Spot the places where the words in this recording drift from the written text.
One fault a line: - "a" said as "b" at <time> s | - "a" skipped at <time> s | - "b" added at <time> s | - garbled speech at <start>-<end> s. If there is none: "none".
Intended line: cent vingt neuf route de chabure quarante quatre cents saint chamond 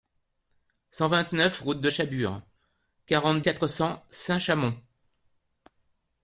none